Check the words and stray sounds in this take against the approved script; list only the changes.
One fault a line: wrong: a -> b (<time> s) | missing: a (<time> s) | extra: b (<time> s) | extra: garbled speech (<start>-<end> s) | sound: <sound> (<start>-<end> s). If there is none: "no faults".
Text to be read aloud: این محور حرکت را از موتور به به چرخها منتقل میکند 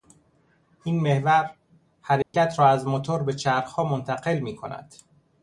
sound: dropout (2.2-2.3 s)
missing: به (3.3 s)